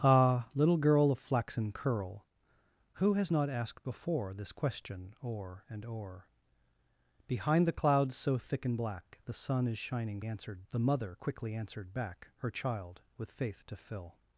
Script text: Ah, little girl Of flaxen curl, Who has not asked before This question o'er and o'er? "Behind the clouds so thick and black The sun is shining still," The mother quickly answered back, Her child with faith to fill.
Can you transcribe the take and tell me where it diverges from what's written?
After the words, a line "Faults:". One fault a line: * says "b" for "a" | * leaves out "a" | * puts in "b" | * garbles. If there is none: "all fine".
Ah, little girl Of flaxen curl, Who has not asked before This question o'er and o'er? "Behind the clouds so thick and black The sun is shining answered," The mother quickly answered back, Her child with faith to fill.
Faults:
* says "answered" for "still"